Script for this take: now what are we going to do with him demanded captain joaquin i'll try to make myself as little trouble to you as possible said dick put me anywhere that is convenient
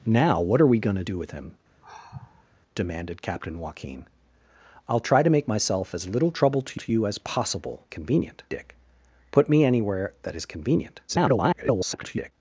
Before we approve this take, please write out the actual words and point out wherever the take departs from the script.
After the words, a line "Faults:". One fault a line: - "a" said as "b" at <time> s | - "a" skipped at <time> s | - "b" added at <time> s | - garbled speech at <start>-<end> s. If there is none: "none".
now what are we going to do with him demanded captain joaquin i'll try to make myself as little trouble to to you as possible convenient dick put me anywhere that is convenient [garbled]
Faults:
- "to" added at 6.7 s
- "said" said as "convenient" at 7.9 s
- garbled speech at 11.1-12.3 s